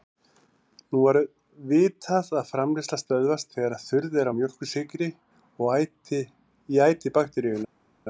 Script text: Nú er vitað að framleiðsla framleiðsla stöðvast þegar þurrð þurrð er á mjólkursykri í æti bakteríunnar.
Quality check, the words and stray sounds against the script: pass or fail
fail